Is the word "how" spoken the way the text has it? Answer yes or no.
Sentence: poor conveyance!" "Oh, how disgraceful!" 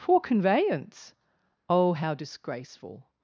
yes